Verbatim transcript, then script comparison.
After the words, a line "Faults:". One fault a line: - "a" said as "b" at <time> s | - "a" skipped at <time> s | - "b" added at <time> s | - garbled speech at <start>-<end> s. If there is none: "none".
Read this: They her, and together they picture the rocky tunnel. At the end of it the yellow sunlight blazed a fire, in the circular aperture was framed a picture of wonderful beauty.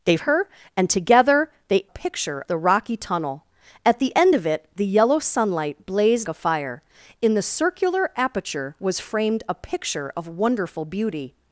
They her, and together they picture the rocky tunnel. At the end of it the yellow sunlight blazed a fire, in the circular aperture was framed a picture of wonderful beauty.
Faults:
none